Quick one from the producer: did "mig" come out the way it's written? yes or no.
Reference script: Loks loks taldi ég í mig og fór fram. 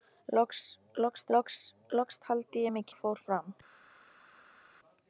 yes